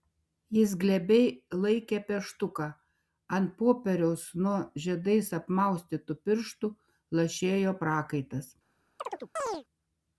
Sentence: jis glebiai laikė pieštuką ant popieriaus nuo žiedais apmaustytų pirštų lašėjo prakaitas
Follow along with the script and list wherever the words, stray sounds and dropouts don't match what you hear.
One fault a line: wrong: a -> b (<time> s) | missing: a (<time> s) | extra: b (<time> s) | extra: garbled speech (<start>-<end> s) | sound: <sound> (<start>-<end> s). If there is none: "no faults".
sound: chirp (9.0-9.6 s)